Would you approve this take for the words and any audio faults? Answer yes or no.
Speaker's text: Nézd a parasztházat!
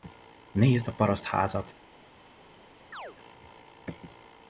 no